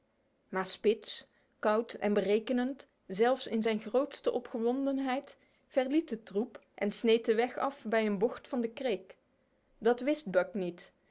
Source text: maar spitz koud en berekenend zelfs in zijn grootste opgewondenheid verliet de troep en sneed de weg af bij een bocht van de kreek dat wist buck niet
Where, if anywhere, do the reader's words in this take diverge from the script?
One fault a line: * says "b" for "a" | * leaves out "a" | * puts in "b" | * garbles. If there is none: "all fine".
all fine